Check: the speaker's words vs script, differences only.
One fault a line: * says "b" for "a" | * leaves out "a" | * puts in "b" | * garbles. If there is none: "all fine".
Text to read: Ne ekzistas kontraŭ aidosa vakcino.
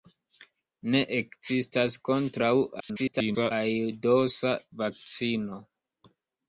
* garbles